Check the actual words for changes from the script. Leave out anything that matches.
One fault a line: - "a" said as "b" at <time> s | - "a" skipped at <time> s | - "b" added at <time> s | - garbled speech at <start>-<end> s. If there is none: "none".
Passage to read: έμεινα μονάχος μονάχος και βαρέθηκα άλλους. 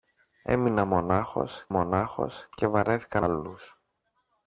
none